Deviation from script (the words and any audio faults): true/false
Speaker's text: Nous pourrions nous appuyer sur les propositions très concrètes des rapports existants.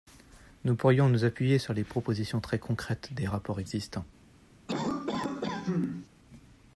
true